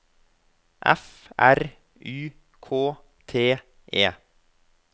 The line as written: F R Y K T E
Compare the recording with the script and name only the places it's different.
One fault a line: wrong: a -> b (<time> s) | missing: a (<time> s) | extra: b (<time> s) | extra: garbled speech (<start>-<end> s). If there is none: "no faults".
no faults